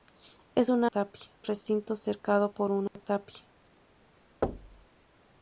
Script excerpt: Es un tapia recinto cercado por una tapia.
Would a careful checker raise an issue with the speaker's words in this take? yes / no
no